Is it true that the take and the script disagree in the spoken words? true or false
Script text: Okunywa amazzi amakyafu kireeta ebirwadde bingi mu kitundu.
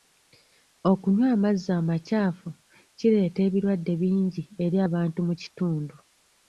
true